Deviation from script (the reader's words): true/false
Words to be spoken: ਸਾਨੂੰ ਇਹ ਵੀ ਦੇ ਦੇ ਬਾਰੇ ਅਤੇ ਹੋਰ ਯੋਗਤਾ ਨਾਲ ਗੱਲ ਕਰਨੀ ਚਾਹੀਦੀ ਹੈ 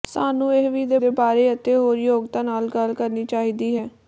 false